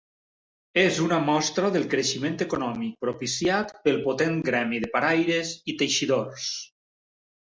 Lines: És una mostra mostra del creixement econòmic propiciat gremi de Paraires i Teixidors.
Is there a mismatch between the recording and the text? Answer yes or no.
yes